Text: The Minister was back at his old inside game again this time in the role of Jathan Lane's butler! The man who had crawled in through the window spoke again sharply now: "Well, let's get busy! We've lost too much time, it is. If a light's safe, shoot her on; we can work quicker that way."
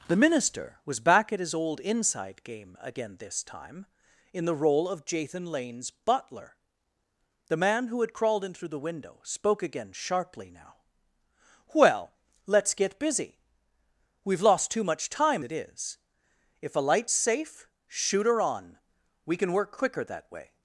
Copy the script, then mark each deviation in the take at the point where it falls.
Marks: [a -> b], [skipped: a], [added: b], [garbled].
The Minister was back at his old inside game again this time in the role of Jathan Lane's butler! The man who had crawled in through the window spoke again sharply now: "Well, let's get busy! We've lost too much time, it is. If a light's safe, shoot her on; we can work quicker that way."